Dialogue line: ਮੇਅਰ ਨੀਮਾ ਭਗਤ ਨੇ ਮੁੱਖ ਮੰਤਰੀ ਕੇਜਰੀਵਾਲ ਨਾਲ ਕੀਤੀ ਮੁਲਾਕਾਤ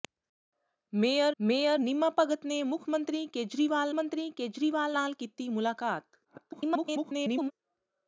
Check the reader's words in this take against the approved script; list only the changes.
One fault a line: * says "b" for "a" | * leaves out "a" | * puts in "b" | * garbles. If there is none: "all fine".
* puts in "ਮੇਅਰ"
* puts in "ਮੰਤਰੀ ਕੇਜਰੀਵਾਲ"
* garbles